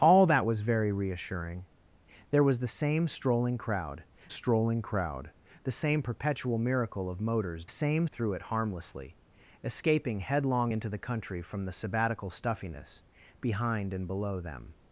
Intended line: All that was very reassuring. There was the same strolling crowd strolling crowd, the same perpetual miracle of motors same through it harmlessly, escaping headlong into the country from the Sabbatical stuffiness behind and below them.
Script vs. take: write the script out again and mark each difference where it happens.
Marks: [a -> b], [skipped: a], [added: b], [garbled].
All that was very reassuring. There was the same strolling crowd strolling crowd, the same perpetual miracle of motors same through it harmlessly, escaping headlong into the country from the Sabbatical stuffiness behind and below them.